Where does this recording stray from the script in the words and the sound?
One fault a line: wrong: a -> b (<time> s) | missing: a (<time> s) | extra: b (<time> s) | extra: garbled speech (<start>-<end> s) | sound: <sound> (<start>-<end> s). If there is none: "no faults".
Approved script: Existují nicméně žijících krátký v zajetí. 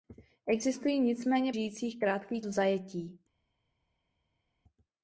no faults